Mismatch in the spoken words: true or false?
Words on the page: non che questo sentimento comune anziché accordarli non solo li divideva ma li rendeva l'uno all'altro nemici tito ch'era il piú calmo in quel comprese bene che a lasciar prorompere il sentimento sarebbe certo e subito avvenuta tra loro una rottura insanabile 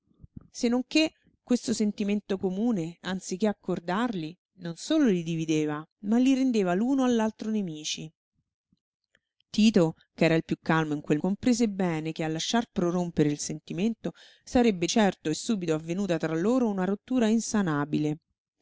false